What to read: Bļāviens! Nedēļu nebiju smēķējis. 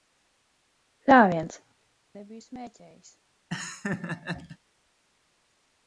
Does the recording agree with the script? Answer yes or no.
no